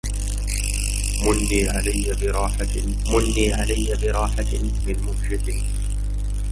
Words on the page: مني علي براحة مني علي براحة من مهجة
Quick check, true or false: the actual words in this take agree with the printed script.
true